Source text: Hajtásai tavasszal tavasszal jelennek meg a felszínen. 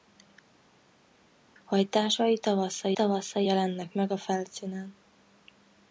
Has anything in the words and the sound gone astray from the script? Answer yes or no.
no